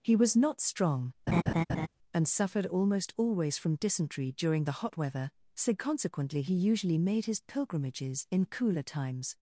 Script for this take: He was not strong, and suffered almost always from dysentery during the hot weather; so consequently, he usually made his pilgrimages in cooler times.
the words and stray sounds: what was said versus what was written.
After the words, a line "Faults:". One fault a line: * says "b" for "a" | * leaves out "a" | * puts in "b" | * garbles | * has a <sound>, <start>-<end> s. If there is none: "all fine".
He was not strong, and suffered almost always from dysentery during the hot weather; so consequently, he usually made his pilgrimages in cooler times.
Faults:
* has a laugh, 1.3-1.9 s